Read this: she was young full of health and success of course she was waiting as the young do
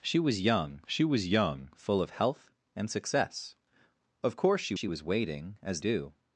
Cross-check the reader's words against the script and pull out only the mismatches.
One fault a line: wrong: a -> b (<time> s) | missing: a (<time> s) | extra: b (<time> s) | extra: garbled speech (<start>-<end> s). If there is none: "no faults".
extra: she was young (0.9 s)
extra: she (4.7 s)
missing: the young (5.8 s)